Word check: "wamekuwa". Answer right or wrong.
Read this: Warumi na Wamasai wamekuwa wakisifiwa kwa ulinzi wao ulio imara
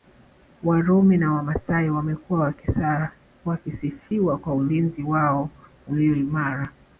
right